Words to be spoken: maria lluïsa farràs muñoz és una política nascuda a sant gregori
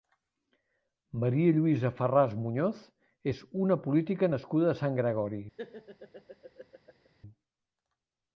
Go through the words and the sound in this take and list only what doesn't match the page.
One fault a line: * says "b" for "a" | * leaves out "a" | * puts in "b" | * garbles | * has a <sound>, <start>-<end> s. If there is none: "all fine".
* has a laugh, 5.6-7.1 s